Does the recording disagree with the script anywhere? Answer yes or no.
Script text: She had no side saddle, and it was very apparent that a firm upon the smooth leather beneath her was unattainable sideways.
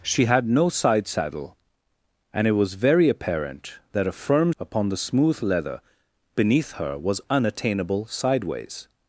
no